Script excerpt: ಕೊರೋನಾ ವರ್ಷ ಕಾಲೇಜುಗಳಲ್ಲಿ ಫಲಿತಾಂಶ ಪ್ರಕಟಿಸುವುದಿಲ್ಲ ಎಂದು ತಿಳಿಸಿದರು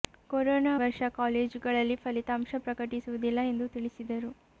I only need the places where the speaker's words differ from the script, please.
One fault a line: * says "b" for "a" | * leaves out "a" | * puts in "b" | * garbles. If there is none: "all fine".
all fine